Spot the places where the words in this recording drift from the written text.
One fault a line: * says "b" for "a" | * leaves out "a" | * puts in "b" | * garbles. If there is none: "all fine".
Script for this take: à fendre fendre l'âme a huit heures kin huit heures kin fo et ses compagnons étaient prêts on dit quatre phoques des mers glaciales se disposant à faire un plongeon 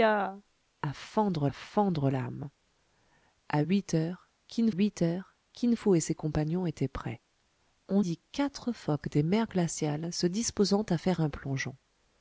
all fine